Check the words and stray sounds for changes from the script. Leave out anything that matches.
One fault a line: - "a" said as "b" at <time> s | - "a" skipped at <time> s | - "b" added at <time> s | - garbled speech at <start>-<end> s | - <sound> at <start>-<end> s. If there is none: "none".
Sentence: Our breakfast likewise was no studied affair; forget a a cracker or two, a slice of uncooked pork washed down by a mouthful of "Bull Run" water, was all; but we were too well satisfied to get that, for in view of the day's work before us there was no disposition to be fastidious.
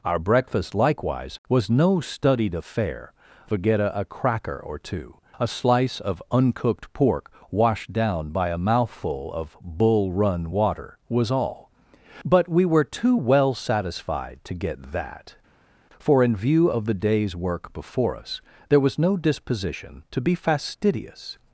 none